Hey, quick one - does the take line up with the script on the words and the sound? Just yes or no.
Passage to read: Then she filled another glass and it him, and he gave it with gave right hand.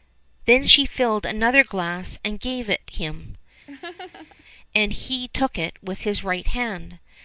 no